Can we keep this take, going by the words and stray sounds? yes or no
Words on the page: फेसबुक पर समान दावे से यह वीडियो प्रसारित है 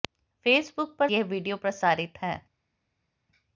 no